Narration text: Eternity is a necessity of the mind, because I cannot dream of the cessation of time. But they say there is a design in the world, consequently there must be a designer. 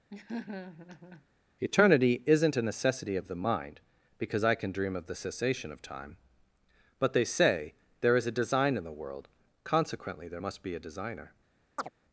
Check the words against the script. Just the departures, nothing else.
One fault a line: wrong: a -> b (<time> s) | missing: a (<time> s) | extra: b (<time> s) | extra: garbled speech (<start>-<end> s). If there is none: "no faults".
wrong: is -> isn't (2.3 s)
wrong: cannot -> can (4.6 s)